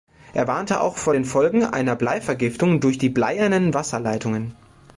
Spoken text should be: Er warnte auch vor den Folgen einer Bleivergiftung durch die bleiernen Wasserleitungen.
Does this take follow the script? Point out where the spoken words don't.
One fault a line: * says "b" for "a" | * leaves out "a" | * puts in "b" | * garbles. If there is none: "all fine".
all fine